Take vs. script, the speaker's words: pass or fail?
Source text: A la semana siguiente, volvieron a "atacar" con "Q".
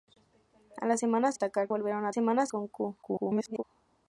fail